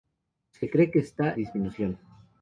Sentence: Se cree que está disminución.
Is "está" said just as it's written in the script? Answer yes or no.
yes